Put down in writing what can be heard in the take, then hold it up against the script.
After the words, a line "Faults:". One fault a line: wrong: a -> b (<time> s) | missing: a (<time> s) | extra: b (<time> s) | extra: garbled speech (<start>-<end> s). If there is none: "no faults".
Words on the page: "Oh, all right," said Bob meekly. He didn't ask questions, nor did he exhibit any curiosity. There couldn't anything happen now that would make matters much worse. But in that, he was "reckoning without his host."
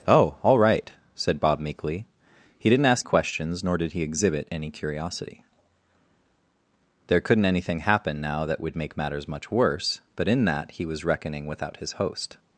"Oh, all right," said Bob meekly. He didn't ask questions, nor did he exhibit any curiosity. There couldn't anything happen now that would make matters much worse. But in that, he was "reckoning without his host."
Faults:
no faults